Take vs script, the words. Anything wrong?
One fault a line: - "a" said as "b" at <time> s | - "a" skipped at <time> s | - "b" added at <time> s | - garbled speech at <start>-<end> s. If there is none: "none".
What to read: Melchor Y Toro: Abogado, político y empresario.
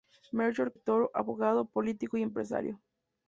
none